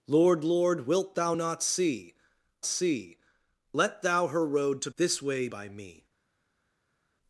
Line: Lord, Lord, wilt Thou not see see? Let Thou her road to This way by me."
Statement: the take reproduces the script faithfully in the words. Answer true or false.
true